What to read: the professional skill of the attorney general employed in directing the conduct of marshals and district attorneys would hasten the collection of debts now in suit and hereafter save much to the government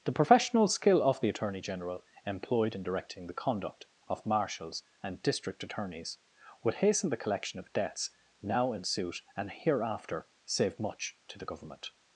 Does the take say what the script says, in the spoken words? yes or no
yes